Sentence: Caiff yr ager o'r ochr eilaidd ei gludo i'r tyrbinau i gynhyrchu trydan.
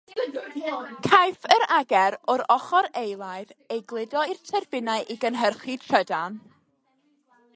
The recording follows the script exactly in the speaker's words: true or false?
true